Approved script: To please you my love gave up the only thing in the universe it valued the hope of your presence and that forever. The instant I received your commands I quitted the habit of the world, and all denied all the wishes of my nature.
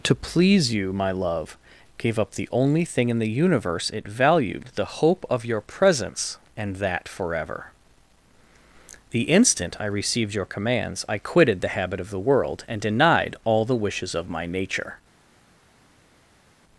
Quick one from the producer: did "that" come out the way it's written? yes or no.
yes